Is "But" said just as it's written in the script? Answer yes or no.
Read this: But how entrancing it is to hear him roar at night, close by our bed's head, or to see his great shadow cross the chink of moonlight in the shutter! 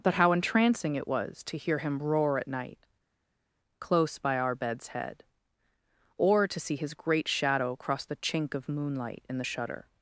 yes